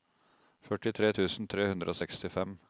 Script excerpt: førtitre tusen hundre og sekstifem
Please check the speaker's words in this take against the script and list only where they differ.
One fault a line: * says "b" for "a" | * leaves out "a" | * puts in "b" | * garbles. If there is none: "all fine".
* puts in "tre"